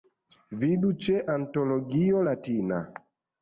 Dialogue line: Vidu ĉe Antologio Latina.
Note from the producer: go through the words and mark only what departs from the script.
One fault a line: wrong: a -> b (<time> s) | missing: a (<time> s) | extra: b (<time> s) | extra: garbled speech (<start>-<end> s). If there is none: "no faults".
no faults